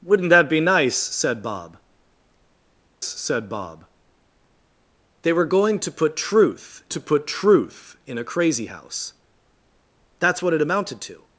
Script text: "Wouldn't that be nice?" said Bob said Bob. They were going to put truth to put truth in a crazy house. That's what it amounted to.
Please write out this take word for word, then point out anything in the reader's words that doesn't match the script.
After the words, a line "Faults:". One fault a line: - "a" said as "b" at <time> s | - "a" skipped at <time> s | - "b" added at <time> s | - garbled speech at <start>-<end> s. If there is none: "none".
"Wouldn't that be nice?" said Bob said Bob. They were going to put truth to put truth in a crazy house. That's what it amounted to.
Faults:
none